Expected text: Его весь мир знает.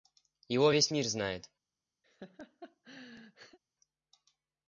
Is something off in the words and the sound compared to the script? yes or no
yes